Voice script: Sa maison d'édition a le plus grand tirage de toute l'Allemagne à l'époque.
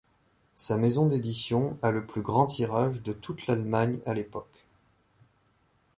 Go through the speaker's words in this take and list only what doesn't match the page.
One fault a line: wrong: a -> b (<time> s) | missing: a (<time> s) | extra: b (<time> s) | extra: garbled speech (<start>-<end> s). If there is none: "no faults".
no faults